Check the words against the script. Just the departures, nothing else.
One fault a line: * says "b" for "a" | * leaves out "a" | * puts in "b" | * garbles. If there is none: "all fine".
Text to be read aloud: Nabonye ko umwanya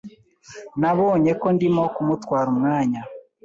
* puts in "ndimo kumutwara"